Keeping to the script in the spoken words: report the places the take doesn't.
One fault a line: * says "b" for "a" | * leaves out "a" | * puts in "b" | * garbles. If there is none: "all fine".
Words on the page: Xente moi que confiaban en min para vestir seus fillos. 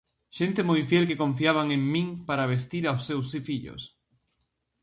* puts in "fiel"
* puts in "aos"